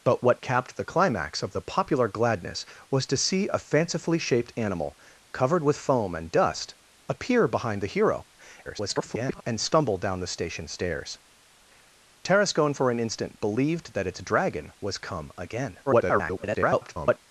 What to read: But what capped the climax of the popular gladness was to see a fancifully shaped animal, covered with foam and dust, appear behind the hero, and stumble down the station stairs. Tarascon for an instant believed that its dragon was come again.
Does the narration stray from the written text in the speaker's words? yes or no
yes